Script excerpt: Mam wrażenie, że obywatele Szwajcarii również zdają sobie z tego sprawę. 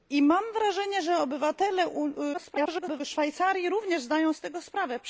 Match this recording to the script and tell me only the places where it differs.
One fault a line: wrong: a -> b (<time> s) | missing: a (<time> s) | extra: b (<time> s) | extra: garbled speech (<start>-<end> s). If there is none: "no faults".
extra: garbled speech (2.3-3.0 s)
missing: sobie (4.3 s)